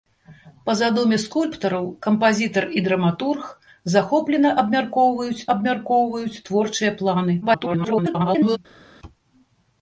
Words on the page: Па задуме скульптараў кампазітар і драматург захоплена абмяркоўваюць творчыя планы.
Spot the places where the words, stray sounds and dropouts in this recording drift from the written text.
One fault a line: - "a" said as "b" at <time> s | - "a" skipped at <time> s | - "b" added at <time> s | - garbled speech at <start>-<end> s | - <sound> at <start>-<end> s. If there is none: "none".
- "абмяркоўваюць" added at 5.5 s
- garbled speech at 7.4-8.6 s